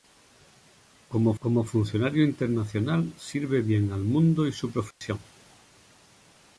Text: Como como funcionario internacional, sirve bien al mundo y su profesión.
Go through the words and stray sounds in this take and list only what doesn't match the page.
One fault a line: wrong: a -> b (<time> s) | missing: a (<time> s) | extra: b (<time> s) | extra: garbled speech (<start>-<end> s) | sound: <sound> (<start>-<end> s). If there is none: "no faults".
sound: dropout (4.9-5.0 s)